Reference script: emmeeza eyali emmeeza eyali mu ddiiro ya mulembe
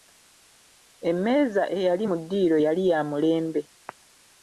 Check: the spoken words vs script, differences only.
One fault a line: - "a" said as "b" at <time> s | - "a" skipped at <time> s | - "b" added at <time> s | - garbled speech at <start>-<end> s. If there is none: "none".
- "emmeeza eyali" skipped at 2.0 s
- "yali" added at 2.6 s